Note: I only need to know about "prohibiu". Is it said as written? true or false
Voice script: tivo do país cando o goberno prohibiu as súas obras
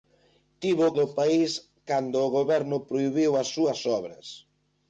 true